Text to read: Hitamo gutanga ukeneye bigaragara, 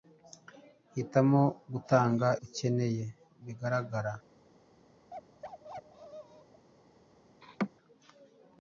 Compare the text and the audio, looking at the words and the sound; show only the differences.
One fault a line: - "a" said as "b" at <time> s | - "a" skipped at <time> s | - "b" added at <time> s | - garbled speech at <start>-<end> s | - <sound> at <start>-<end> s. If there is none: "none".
- bark at 5.1-6.7 s
- laugh at 7.4-7.7 s